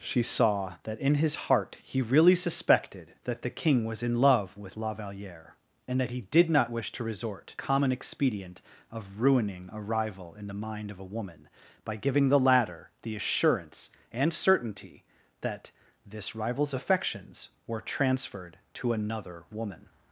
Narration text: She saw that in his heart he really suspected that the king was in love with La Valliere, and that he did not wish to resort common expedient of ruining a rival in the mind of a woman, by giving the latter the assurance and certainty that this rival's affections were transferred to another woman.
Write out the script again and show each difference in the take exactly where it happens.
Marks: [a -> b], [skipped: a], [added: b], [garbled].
She saw that in his heart he really suspected that the king was in love with La Valliere, and that he did not wish to resort common expedient of ruining a rival in the mind of a woman, by giving the latter the assurance and certainty that this rival's affections were transferred to another woman.